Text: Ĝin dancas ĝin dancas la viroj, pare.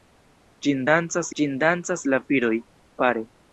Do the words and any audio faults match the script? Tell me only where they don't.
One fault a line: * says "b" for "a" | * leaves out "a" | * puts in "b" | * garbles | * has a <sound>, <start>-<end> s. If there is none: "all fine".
all fine